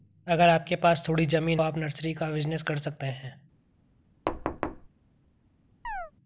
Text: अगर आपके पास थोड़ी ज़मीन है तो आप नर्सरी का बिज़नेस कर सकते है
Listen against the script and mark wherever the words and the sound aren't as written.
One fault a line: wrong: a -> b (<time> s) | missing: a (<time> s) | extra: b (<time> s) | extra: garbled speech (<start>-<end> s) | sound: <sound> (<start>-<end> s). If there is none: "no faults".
missing: है तो (1.6 s)
sound: thud (4.3-4.9 s)
sound: chirp (5.8-6.1 s)